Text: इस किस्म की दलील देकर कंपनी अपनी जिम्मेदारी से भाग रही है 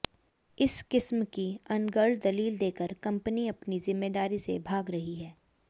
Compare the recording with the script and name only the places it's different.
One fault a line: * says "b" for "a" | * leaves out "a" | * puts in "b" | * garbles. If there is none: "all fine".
* puts in "अनर्गल"